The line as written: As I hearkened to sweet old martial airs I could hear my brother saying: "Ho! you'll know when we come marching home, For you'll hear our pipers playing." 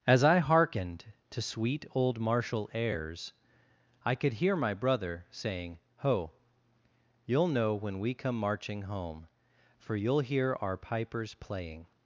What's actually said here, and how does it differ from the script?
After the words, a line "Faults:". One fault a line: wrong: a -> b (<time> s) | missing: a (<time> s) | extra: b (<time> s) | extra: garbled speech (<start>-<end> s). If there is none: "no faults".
As I hearkened to sweet old martial airs I could hear my brother saying: "Ho! you'll know when we come marching home, For you'll hear our pipers playing."
Faults:
no faults